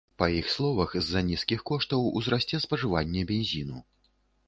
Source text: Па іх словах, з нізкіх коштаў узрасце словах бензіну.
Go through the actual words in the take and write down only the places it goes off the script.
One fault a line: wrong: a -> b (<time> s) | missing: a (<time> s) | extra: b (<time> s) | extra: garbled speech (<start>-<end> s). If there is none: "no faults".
extra: за (1.1 s)
wrong: словах -> спажыванне (2.7 s)